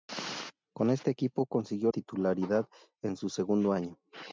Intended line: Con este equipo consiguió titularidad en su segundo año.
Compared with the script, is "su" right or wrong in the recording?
right